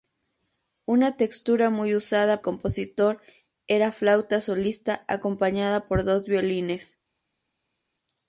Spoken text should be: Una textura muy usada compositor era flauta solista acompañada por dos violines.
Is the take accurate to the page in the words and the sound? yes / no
yes